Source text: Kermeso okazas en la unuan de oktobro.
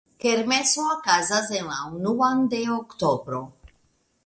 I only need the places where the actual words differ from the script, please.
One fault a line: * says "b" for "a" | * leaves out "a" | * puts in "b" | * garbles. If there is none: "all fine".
all fine